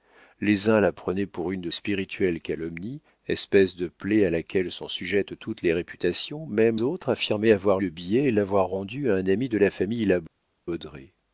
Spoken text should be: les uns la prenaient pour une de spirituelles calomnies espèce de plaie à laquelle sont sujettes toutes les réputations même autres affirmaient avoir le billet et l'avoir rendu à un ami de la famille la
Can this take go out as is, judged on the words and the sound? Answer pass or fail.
pass